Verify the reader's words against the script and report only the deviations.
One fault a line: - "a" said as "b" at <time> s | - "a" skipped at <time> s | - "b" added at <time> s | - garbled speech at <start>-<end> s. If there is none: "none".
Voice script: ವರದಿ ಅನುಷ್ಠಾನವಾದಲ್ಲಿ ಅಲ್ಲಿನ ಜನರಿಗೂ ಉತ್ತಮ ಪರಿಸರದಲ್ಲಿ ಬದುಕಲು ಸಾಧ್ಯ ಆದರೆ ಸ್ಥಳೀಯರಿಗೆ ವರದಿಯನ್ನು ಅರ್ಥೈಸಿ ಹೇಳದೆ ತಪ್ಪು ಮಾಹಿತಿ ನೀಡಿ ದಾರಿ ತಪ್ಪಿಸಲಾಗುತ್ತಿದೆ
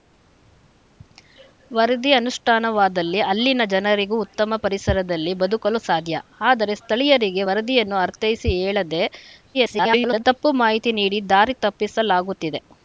- garbled speech at 9.5-10.2 s